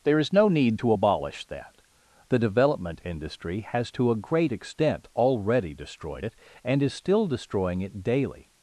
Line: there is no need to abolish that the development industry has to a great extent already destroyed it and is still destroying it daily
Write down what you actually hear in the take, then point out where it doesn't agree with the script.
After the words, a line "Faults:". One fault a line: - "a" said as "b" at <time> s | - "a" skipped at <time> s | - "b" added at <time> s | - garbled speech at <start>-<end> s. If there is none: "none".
there is no need to abolish that the development industry has to a great extent already destroyed it and is still destroying it daily
Faults:
none